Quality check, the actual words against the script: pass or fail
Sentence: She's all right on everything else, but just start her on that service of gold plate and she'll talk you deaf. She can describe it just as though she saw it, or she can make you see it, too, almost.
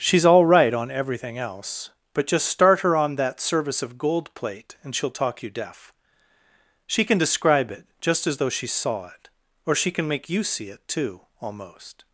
pass